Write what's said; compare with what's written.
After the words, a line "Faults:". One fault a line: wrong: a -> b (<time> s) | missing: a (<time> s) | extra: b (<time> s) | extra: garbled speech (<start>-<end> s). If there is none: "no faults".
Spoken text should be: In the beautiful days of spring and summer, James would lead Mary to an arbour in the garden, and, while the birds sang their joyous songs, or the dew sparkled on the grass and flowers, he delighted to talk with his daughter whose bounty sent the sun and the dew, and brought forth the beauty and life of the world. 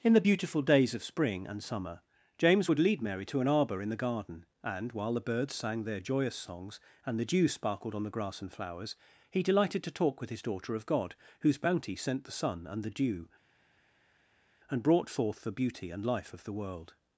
In the beautiful days of spring and summer, James would lead Mary to an arbour in the garden, and, while the birds sang their joyous songs, and the dew sparkled on the grass and flowers, he delighted to talk with his daughter of God, whose bounty sent the sun and the dew, and brought forth the beauty and life of the world.
Faults:
wrong: or -> and (7.1 s)
extra: of God (10.7 s)